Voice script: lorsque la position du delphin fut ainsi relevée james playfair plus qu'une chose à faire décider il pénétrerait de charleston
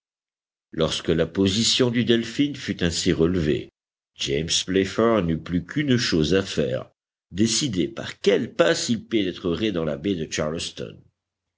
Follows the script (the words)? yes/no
no